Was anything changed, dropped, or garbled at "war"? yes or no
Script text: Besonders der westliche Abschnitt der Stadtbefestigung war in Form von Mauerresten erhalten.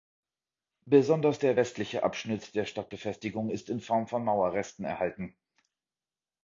yes